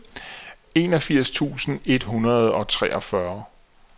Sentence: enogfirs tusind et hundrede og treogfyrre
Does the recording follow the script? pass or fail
pass